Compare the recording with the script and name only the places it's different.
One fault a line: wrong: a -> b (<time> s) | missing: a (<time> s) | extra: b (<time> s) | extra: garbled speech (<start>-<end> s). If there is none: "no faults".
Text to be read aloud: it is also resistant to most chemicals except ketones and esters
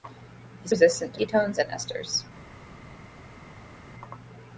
missing: also (0.7 s)
missing: most chemicals except (1.2 s)